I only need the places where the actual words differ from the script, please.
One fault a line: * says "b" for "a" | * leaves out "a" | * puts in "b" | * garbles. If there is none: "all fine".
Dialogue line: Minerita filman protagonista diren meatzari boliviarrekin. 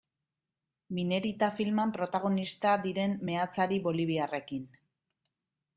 all fine